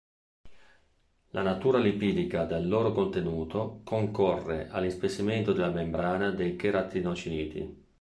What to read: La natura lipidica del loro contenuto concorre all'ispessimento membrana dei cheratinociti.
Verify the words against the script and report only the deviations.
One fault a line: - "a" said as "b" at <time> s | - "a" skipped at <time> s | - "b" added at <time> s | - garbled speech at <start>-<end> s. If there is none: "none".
- "della" added at 5.5 s